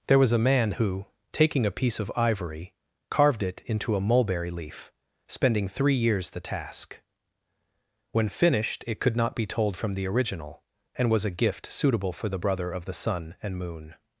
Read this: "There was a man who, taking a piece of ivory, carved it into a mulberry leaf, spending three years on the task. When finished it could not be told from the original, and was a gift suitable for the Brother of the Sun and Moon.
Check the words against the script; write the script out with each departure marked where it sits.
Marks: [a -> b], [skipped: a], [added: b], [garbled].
"There was a man who, taking a piece of ivory, carved it into a mulberry leaf, spending three years [skipped: on] the task. When finished it could not be told from the original, and was a gift suitable for the Brother of the Sun and Moon.